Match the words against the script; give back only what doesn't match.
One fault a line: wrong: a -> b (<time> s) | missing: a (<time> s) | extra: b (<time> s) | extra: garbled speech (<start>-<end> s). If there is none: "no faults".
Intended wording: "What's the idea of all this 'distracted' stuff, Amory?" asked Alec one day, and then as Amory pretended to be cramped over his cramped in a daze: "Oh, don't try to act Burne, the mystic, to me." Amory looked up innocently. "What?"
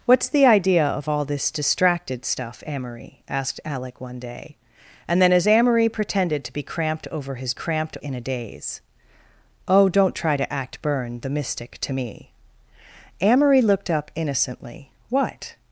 no faults